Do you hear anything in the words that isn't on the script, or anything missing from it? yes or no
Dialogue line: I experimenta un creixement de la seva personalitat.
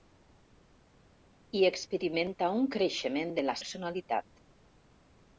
yes